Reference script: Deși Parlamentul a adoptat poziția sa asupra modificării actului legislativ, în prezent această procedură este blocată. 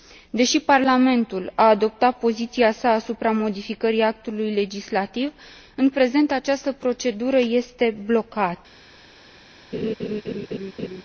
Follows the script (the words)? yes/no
yes